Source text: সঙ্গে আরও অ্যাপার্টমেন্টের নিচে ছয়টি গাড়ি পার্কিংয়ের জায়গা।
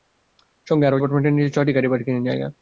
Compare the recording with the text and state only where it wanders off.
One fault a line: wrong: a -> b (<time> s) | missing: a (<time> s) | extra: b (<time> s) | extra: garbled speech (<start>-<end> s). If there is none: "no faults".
no faults